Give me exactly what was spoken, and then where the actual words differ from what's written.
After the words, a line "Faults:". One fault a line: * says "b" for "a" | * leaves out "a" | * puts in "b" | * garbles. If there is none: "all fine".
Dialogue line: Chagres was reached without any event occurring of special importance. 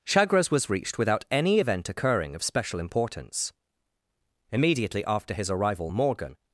Chagres was reached without any event occurring of special importance. Immediately after his arrival, Morgan
Faults:
* puts in "Immediately after his arrival Morgan"